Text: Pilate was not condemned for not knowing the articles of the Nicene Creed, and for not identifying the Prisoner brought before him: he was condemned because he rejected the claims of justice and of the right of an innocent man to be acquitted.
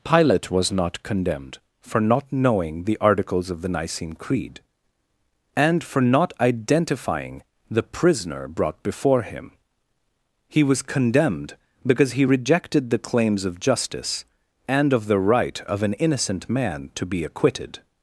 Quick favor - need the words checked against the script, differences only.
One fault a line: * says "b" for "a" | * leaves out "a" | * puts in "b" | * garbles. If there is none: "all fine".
all fine